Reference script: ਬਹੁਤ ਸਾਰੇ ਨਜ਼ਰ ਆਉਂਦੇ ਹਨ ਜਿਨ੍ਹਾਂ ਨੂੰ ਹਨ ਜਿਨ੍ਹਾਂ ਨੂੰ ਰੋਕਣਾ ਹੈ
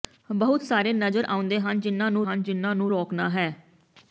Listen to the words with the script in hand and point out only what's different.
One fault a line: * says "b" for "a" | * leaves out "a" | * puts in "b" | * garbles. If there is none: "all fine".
all fine